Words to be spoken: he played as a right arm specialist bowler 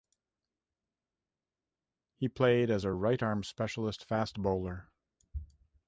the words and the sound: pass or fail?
fail